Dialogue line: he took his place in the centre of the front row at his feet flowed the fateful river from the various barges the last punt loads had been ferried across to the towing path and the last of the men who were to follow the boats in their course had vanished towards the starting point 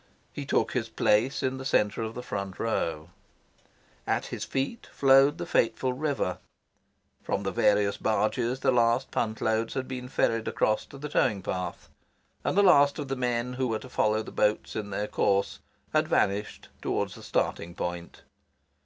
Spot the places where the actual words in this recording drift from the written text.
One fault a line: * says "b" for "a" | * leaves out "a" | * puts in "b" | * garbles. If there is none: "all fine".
all fine